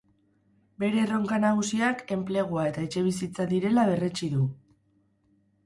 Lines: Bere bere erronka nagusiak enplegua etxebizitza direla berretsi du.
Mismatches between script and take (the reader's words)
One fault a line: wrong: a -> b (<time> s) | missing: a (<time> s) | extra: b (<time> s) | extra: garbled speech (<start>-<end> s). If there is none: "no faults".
missing: bere (1.0 s)
extra: eta (2.7 s)